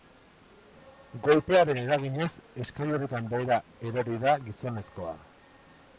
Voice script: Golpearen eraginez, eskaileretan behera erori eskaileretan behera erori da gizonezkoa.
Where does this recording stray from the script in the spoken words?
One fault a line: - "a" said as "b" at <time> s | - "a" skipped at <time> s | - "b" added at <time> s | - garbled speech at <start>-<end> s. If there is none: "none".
- "eskaileretan behera erori" skipped at 4.2 s